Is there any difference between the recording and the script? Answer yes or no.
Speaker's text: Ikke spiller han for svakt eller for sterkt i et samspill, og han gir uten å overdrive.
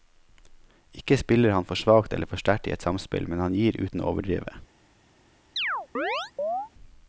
yes